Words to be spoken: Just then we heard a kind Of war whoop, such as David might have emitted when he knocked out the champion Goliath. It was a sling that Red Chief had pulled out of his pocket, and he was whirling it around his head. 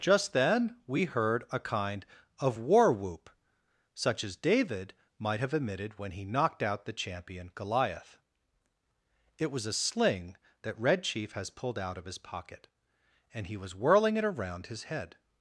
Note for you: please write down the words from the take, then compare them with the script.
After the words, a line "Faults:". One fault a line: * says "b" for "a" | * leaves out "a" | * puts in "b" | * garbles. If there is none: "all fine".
Just then we heard a kind Of war whoop, such as David might have emitted when he knocked out the champion Goliath. It was a sling that Red Chief has pulled out of his pocket, and he was whirling it around his head.
Faults:
* says "has" for "had"